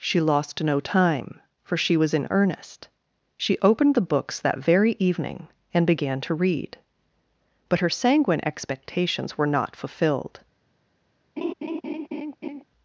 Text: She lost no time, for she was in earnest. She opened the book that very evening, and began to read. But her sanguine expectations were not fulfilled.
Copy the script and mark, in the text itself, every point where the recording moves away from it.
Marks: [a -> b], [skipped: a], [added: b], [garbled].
She lost no time, for she was in earnest. She opened the [book -> books] that very evening, and began to read. But her sanguine expectations were not fulfilled.